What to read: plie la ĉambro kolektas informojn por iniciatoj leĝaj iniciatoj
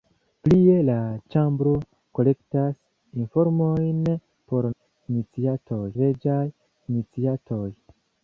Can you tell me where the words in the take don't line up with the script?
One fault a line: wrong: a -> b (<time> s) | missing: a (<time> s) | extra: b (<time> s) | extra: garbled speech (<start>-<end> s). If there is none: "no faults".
no faults